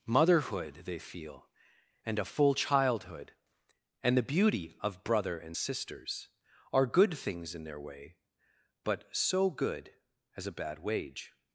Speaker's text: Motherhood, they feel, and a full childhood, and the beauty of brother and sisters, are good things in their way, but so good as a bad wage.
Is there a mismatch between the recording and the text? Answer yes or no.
no